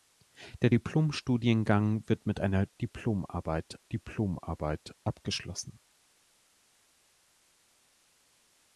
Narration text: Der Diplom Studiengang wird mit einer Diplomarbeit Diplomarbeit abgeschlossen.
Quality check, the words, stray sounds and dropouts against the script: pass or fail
pass